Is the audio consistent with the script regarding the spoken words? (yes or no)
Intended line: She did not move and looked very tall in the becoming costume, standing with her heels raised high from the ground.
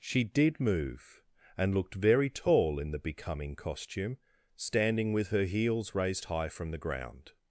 no